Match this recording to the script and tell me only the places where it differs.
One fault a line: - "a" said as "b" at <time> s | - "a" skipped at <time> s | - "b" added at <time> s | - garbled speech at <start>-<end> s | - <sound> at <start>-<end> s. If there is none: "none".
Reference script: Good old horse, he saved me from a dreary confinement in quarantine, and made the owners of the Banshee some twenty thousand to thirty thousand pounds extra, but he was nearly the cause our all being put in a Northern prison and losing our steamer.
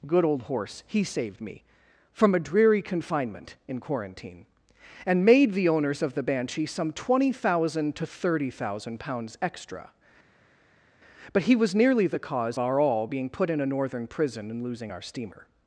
none